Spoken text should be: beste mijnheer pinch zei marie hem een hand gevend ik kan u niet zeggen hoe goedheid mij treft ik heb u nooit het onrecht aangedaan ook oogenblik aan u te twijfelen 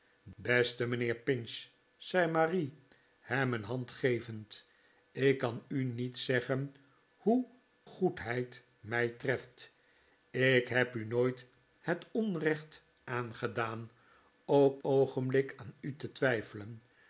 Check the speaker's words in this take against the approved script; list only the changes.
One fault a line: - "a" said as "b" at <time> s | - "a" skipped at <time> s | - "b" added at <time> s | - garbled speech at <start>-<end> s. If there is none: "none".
none